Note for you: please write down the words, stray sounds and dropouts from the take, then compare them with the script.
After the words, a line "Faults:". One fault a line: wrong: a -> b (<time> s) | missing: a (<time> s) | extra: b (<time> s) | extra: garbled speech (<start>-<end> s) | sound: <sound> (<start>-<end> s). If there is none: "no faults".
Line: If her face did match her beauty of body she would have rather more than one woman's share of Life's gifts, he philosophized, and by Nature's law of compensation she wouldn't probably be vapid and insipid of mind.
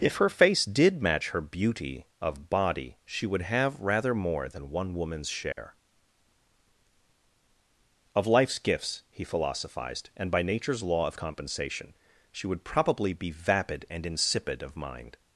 If her face did match her beauty of body she would have rather more than one woman's share of Life's gifts, he philosophized, and by Nature's law of compensation she would probably be vapid and insipid of mind.
Faults:
sound: dropout (5.5-5.6 s)
wrong: wouldn't -> would (12.5 s)